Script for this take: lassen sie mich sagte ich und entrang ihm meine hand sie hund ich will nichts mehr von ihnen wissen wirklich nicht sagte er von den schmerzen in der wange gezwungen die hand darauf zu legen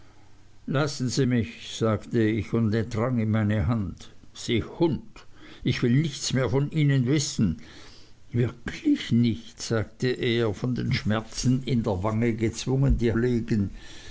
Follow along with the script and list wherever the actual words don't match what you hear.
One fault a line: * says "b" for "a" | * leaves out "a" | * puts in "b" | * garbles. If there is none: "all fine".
* leaves out "hand darauf zu"